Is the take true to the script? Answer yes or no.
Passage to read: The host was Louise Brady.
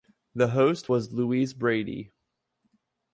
yes